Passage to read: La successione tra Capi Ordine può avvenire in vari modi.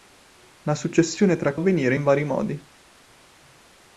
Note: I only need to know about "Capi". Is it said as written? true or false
false